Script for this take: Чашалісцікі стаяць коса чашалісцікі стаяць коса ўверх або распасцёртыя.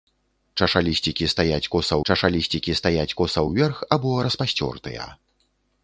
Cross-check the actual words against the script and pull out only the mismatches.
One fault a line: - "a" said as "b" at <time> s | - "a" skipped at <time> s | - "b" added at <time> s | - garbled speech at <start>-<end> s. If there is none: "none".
none